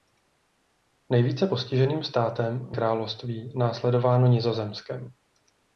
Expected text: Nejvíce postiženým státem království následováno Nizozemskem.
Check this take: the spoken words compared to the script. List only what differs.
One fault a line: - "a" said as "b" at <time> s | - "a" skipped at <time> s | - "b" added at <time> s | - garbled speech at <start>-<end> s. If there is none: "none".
none